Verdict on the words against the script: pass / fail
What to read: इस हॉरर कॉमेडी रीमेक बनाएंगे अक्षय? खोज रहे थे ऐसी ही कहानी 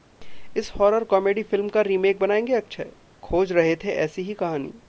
fail